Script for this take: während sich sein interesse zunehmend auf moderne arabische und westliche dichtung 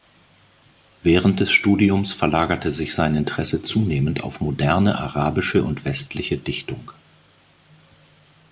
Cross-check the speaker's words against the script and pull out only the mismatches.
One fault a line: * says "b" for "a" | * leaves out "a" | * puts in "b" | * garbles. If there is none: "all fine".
* puts in "des studiums verlagerte"